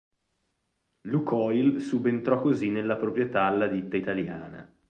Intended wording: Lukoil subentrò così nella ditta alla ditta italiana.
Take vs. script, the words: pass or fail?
fail